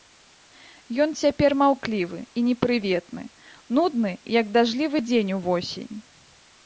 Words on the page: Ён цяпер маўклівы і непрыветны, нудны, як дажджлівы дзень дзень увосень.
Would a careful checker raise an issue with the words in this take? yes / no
yes